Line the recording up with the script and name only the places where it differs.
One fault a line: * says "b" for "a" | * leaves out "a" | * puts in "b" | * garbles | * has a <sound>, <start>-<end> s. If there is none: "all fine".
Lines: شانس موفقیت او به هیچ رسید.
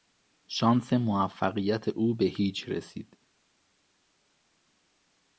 all fine